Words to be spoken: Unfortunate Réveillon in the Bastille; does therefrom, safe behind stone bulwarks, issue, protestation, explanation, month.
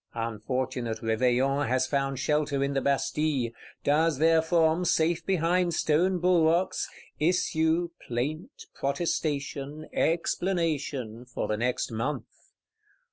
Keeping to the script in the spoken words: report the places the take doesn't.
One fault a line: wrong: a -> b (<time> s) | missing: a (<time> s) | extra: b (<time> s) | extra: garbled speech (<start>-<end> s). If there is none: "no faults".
extra: has found shelter (1.7 s)
extra: plaint (8.1 s)
extra: for the next (11.2 s)